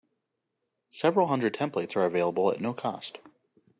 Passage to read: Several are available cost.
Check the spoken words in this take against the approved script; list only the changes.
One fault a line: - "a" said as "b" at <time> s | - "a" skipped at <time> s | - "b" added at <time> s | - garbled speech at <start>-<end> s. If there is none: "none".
- "hundred templates" added at 1.3 s
- "at no" added at 2.5 s